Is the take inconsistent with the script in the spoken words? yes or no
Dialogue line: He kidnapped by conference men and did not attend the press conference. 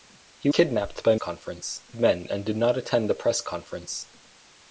no